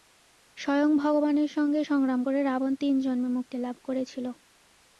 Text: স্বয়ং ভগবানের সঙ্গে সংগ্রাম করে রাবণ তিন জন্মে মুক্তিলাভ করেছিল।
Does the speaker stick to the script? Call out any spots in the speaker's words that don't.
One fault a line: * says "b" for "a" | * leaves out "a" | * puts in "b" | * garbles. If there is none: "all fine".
all fine